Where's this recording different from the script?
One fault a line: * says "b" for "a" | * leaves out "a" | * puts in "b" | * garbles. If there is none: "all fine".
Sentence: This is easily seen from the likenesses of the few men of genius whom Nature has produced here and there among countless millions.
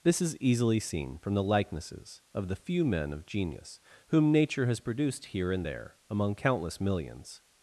all fine